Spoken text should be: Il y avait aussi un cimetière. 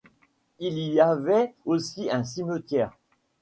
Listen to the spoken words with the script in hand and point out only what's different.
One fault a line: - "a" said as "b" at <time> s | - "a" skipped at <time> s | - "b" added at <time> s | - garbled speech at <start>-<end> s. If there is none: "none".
none